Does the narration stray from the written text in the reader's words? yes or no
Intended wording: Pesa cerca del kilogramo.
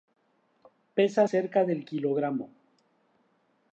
no